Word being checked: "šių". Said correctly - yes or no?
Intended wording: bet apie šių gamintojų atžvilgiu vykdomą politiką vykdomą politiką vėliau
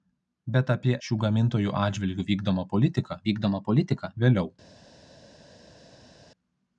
yes